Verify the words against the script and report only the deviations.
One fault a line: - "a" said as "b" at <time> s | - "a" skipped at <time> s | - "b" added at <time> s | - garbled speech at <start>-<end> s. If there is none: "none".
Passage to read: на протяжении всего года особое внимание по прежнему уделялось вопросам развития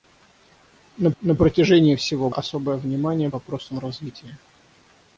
- "на" added at 1.2 s
- "года" skipped at 2.3 s
- "по прежнему уделялось" skipped at 3.3 s